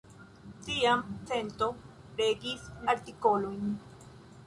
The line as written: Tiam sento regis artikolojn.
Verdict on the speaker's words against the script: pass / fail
pass